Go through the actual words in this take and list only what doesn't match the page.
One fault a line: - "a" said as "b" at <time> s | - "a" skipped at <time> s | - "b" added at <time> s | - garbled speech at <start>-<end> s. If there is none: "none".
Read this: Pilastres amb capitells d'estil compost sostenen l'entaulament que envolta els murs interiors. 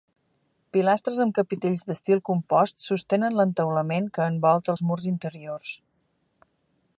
none